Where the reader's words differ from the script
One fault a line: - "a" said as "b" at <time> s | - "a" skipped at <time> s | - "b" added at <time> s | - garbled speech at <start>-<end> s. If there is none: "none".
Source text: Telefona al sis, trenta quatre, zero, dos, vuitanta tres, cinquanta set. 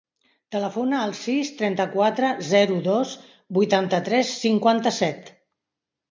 none